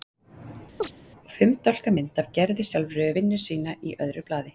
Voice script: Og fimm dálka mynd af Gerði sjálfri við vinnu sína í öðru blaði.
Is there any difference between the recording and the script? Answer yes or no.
no